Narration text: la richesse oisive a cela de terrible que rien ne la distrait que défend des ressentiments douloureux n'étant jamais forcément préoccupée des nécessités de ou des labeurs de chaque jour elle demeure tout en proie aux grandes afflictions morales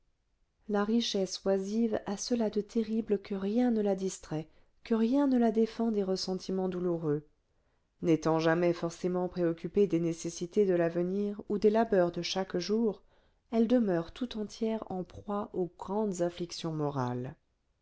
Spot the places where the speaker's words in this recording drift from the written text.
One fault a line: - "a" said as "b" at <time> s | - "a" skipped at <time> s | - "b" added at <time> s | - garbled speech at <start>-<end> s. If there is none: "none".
- "rien ne la" added at 5.0 s
- "l'avenir" added at 10.7 s
- "entière" added at 14.4 s